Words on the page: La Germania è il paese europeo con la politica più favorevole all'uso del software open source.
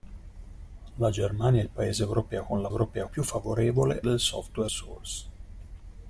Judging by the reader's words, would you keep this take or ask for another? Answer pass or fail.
fail